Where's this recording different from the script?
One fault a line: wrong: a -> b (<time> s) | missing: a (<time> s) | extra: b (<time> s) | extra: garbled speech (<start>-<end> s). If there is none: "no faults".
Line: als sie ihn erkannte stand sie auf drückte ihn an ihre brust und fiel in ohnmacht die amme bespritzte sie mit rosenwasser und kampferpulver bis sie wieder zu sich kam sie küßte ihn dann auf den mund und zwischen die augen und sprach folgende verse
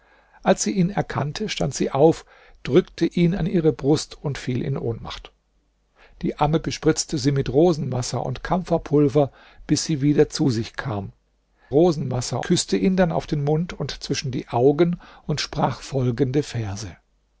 wrong: sie -> rosenwasser (11.7 s)